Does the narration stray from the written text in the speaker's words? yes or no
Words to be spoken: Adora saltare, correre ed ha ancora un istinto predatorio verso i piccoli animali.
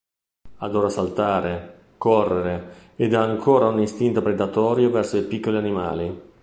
no